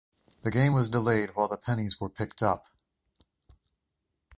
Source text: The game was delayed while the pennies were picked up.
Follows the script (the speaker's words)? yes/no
yes